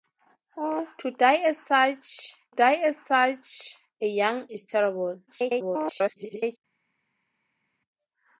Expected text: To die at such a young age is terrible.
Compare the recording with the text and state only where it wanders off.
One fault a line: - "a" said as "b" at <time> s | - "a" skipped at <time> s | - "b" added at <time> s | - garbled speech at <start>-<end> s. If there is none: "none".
- "die at such" added at 2.5 s
- "age" skipped at 4.5 s
- garbled speech at 5.3-6.6 s